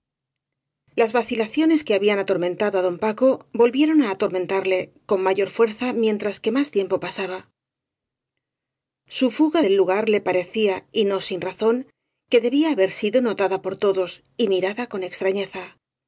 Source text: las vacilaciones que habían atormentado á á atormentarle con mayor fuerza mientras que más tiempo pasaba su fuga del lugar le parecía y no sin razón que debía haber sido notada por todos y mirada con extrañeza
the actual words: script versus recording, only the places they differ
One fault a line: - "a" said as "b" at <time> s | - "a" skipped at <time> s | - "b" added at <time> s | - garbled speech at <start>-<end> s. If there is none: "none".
- "don paco volvieron" added at 2.9 s